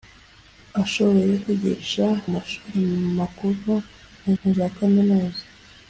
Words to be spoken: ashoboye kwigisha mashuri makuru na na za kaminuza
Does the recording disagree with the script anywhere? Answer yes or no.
no